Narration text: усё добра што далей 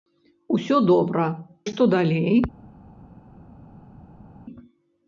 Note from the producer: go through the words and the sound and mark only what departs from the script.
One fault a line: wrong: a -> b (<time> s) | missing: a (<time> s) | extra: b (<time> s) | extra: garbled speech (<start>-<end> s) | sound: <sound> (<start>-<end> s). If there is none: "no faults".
no faults